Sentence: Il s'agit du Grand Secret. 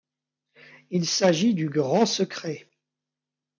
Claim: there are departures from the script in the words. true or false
false